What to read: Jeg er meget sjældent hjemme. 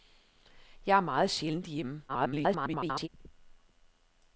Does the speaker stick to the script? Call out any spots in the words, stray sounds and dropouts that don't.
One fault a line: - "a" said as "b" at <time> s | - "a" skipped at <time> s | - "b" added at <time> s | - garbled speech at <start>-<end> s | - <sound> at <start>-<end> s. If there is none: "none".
- garbled speech at 2.1-3.1 s